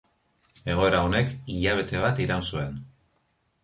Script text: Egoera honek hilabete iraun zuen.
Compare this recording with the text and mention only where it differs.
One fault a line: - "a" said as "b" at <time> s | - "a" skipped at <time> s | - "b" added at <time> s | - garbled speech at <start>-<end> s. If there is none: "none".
- "bat" added at 2.1 s